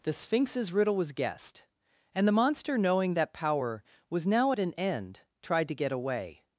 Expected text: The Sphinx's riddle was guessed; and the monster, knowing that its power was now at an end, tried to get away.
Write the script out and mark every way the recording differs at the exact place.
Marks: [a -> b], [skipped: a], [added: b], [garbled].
The Sphinx's riddle was guessed; and the monster, knowing that [skipped: its] power was now at an end, tried to get away.